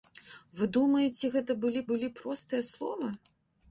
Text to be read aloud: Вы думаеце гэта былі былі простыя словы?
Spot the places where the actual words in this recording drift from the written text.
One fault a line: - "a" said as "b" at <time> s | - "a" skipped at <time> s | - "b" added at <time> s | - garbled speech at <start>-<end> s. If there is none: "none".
none